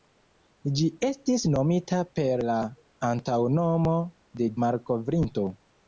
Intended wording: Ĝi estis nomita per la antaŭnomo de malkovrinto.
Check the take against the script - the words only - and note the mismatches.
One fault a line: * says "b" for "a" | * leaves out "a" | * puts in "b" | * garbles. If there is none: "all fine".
all fine